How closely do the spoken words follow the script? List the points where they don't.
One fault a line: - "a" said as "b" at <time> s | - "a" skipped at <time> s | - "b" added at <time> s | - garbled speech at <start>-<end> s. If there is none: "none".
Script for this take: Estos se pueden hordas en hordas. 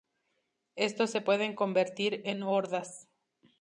- "hordas" said as "convertir" at 1.6 s